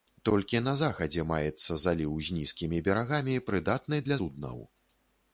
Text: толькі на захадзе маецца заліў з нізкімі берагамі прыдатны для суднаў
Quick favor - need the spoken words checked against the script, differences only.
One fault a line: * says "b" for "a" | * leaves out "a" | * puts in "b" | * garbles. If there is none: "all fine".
all fine